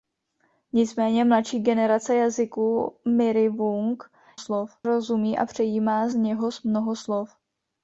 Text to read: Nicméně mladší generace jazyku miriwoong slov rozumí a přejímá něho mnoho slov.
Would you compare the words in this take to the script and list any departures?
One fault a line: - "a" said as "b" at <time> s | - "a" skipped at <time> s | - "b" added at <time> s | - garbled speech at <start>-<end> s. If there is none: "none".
none